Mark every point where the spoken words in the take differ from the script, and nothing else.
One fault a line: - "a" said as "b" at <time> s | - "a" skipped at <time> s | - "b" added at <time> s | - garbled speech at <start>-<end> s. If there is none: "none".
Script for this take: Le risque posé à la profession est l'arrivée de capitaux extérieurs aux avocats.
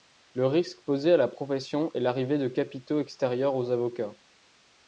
none